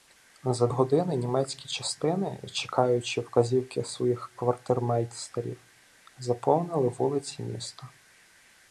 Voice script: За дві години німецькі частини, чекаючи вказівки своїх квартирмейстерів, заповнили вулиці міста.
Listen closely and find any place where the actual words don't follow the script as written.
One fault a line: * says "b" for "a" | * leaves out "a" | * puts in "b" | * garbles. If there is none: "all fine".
* leaves out "дві"